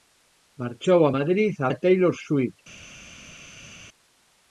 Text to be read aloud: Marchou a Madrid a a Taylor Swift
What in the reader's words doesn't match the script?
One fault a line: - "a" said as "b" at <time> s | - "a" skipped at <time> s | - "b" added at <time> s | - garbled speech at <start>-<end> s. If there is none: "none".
none